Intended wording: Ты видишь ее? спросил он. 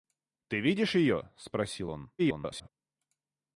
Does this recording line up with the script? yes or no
no